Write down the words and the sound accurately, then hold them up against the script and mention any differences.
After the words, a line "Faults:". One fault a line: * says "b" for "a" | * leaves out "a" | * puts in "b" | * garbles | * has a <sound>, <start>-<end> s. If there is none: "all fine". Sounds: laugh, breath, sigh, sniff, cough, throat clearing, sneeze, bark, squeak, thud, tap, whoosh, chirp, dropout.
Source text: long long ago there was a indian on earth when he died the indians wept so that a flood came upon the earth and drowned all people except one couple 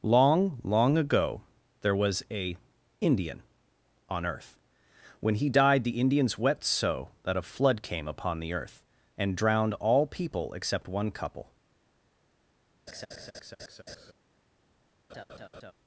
long long ago there was a indian on earth when he died the indians wept so that a flood came upon the earth and drowned all people except one couple
Faults:
* has a laugh, 12.9-14.1 s
* has a laugh, 15.1-15.7 s